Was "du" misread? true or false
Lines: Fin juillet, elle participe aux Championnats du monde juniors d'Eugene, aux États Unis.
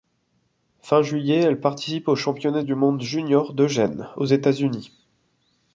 false